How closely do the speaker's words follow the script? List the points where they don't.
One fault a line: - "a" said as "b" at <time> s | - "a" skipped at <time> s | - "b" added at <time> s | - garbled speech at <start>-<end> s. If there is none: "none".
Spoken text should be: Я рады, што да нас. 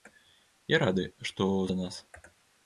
none